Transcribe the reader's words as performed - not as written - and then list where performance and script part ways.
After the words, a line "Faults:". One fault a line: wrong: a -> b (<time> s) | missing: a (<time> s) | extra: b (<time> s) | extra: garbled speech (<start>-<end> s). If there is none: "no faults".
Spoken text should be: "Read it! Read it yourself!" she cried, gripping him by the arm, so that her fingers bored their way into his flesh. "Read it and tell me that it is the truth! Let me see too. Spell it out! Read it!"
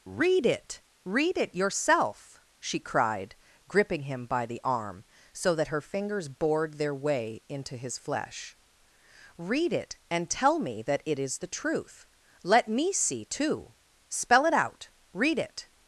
"Read it! Read it yourself!" she cried, gripping him by the arm, so that her fingers bored their way into his flesh. "Read it and tell me that it is the truth! Let me see too. Spell it out! Read it!"
Faults:
no faults